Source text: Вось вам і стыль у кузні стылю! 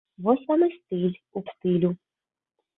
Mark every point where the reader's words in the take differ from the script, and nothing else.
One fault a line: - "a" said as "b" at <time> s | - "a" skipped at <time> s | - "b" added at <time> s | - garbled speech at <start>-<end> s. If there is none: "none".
- "кузні" skipped at 1.4 s